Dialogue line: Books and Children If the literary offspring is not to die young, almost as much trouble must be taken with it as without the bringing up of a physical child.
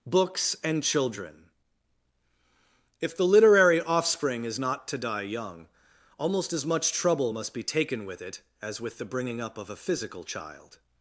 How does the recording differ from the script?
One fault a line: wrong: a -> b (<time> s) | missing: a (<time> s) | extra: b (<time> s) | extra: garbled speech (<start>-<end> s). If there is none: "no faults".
wrong: without -> with (8.8 s)